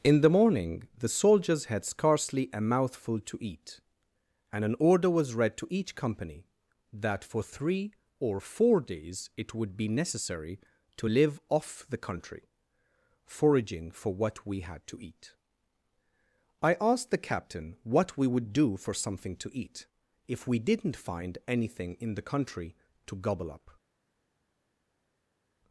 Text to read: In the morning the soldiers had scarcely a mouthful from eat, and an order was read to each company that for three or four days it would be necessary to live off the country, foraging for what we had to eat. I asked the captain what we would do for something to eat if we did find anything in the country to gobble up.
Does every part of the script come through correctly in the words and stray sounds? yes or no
no